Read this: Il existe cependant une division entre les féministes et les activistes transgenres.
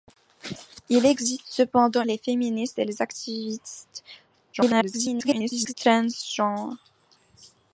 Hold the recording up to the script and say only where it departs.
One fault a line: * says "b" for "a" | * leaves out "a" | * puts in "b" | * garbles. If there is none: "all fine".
* leaves out "une division entre"
* garbles